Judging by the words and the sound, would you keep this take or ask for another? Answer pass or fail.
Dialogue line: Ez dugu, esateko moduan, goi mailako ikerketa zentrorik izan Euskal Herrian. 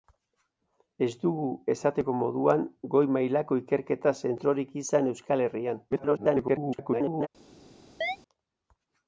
fail